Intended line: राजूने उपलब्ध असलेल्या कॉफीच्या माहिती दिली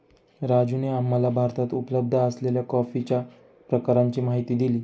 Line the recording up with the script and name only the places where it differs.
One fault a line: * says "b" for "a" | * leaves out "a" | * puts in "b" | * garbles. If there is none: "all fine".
* puts in "आम्हाला भारतात"
* puts in "प्रकारांची"